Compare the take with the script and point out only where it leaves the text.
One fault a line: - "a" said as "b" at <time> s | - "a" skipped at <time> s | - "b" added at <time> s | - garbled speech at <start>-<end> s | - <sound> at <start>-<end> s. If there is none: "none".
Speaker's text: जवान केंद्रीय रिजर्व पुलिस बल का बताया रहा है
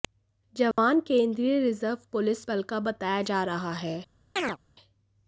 - dropout at 0.7-0.8 s
- "जा" added at 3.2 s
- chirp at 4.4-4.6 s